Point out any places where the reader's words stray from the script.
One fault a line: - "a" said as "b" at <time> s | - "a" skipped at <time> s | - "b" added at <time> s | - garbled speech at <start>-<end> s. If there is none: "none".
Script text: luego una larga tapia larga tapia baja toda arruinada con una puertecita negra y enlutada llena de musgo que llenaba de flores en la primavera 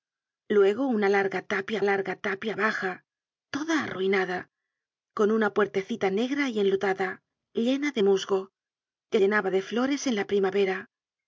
none